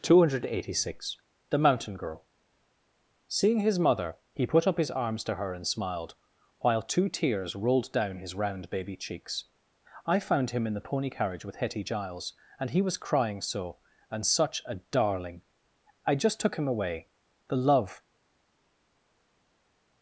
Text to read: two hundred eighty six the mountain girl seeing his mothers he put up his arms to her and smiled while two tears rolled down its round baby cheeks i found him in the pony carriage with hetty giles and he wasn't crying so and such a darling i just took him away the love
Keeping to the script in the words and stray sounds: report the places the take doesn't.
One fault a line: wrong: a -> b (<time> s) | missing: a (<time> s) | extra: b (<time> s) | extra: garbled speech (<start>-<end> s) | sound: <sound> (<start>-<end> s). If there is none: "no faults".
wrong: mothers -> mother (3.8 s)
wrong: its -> his (8.2 s)
wrong: wasn't -> was (12.8 s)